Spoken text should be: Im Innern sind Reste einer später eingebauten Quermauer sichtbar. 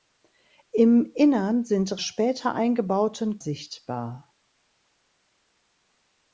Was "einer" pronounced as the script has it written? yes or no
no